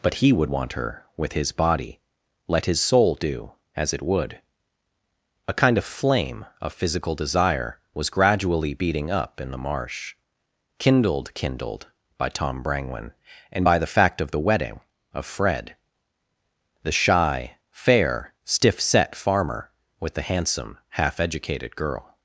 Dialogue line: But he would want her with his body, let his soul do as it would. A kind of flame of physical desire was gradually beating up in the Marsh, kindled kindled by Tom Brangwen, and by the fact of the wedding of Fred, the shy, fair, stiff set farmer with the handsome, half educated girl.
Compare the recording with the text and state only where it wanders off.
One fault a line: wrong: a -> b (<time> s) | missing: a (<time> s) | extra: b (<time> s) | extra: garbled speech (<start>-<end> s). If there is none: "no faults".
no faults